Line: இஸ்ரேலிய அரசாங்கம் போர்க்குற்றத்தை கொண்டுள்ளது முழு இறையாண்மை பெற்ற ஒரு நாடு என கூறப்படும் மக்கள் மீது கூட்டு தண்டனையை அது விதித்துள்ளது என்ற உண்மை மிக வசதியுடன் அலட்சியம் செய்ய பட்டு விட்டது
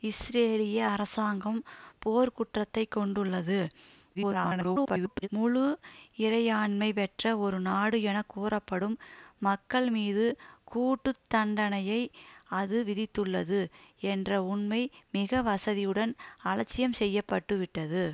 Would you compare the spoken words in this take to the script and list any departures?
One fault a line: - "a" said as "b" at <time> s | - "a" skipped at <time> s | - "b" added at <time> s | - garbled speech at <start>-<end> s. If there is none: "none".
- garbled speech at 4.1-5.3 s